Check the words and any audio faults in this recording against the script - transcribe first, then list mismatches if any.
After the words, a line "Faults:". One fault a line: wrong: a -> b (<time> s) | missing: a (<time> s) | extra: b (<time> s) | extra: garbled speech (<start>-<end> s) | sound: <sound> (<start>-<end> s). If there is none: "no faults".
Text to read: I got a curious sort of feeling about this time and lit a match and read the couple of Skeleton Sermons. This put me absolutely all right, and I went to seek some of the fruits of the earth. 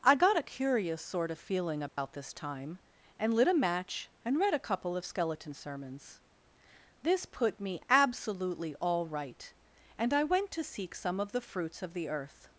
I got a curious sort of feeling about this time and lit a match and read a couple of Skeleton Sermons. This put me absolutely all right, and I went to seek some of the fruits of the earth.
Faults:
sound: dropout (1.9-2.0 s)
wrong: the -> a (4.5 s)